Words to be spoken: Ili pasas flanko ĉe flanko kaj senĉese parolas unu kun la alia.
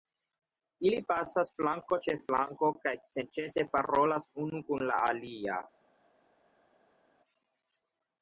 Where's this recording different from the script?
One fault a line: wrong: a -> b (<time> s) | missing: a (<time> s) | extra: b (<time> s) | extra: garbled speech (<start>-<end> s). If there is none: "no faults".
no faults